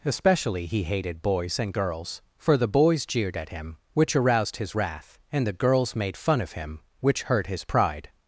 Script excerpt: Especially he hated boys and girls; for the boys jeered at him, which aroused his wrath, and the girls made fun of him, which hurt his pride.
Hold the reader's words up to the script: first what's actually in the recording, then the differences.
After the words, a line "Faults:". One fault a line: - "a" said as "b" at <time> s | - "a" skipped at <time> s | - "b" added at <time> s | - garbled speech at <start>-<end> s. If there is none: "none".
Especially he hated boys and girls; for the boys jeered at him, which aroused his wrath, and the girls made fun of him, which hurt his pride.
Faults:
none